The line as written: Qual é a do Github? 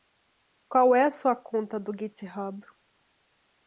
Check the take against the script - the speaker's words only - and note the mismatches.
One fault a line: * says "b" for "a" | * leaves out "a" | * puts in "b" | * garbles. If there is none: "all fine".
* puts in "sua conta"